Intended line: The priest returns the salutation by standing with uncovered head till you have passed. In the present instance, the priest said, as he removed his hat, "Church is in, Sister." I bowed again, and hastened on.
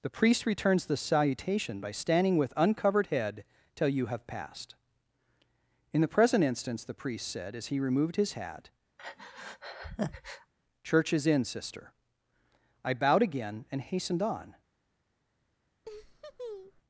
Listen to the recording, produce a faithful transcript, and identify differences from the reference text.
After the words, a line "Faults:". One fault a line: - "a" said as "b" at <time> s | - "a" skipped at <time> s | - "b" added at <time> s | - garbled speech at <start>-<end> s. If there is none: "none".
The priest returns the salutation by standing with uncovered head till you have passed. In the present instance, the priest said, as he removed his hat, "Church is in, Sister." I bowed again, and hastened on.
Faults:
none